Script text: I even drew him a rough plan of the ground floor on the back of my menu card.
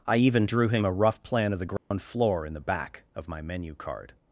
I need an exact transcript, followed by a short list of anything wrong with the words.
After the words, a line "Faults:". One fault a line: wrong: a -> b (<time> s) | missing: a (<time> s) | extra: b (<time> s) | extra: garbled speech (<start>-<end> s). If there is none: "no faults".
I even drew him a rough plan of the ground floor in the back of my menu card.
Faults:
wrong: on -> in (2.5 s)